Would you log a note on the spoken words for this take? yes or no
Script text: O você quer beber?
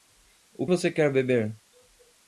no